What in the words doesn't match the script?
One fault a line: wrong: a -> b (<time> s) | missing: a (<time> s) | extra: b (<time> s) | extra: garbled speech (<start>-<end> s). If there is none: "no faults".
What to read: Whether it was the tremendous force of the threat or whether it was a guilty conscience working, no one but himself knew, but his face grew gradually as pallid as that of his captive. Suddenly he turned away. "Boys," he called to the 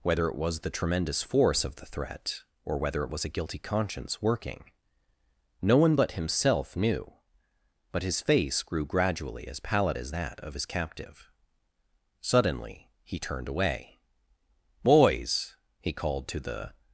no faults